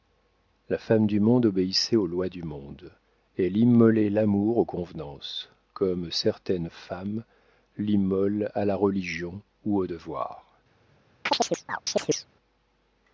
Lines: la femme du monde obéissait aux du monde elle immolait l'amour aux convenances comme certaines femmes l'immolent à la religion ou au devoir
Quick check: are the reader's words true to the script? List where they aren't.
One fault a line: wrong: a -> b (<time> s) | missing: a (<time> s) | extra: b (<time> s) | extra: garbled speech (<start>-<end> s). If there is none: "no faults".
extra: lois (2.1 s)